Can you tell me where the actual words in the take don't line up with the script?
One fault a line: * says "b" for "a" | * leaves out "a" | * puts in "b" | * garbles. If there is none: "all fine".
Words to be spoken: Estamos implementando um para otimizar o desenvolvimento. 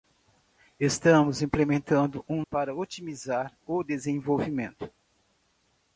all fine